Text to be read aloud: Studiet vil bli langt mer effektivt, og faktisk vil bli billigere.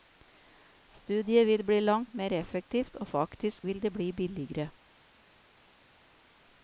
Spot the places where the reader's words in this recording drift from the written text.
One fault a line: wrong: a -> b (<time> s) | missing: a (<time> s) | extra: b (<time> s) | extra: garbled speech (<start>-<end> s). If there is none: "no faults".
extra: det (3.8 s)